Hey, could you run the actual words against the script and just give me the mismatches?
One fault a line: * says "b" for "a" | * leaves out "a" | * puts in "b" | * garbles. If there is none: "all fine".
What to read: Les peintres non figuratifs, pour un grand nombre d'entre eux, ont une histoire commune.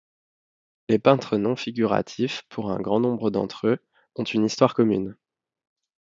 all fine